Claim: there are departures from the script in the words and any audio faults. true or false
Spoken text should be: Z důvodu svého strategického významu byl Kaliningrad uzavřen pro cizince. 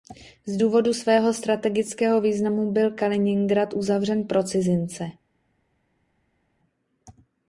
false